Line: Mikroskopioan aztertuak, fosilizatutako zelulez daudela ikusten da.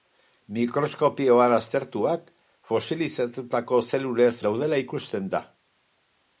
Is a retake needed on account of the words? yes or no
no